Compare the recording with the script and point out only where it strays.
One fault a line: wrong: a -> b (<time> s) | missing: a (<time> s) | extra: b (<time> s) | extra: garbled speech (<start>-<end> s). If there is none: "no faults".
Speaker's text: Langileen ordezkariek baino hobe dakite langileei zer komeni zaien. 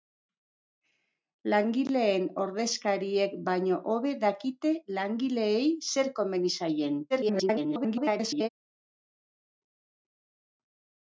extra: garbled speech (7.1-8.5 s)